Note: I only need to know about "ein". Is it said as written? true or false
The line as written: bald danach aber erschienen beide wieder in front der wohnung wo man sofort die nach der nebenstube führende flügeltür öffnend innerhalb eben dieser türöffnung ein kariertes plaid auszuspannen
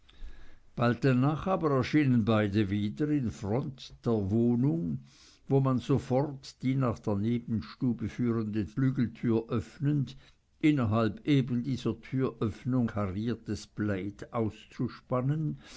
false